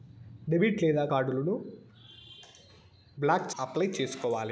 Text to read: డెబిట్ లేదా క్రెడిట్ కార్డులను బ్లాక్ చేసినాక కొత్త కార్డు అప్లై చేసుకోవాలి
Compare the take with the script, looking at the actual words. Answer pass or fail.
fail